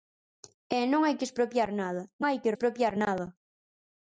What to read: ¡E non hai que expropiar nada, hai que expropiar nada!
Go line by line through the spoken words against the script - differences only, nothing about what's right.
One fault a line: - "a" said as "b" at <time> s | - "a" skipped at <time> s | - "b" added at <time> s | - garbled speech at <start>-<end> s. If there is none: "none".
none